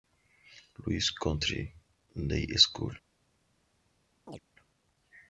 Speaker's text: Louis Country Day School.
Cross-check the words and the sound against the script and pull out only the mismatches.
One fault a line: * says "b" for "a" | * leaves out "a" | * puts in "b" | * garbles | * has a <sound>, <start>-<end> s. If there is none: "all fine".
* has a chirp, 4.3-4.4 s